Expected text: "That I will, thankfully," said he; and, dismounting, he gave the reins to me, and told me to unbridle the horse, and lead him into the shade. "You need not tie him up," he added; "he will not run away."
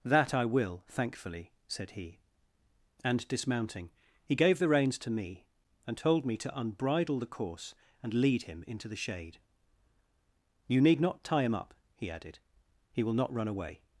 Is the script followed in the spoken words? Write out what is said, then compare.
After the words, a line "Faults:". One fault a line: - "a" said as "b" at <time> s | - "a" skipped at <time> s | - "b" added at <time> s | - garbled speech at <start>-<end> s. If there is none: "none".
"That I will, thankfully," said he; and, dismounting, he gave the reins to me, and told me to unbridle the course, and lead him into the shade. "You need not tie him up," he added; "he will not run away."
Faults:
- "horse" said as "course" at 7.2 s